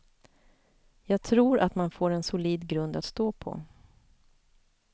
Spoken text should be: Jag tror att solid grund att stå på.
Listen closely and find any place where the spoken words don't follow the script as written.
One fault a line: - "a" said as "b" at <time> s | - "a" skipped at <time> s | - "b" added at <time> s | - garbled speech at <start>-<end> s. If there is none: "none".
- "man får en" added at 1.8 s